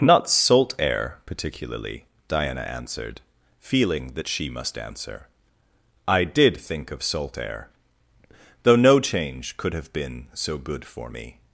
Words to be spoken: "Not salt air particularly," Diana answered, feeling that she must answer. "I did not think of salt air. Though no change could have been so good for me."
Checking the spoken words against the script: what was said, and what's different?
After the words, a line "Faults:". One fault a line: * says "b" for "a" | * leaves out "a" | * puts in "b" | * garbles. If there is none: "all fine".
"Not salt air particularly," Diana answered, feeling that she must answer. "I did think of salt air. Though no change could have been so good for me."
Faults:
* leaves out "not"